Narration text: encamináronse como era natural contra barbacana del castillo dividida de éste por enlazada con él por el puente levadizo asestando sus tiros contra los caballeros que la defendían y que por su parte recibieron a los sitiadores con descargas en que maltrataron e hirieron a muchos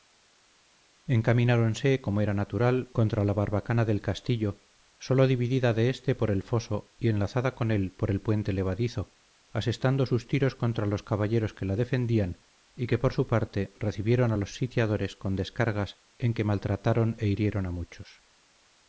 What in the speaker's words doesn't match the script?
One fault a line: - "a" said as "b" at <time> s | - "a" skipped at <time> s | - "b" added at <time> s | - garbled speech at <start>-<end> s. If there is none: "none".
- "la" added at 3.2 s
- "sólo" added at 5.0 s
- "el foso y" added at 6.3 s